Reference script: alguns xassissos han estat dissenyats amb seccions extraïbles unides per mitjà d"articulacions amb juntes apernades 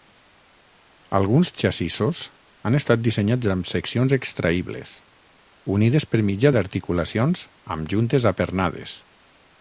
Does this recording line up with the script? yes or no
yes